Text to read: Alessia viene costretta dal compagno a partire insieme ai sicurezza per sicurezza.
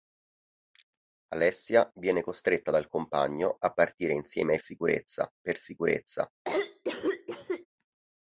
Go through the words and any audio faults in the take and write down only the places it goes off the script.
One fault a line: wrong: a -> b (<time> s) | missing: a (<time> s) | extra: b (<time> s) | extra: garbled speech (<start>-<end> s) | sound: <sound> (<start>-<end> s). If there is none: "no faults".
sound: cough (6.4-7.7 s)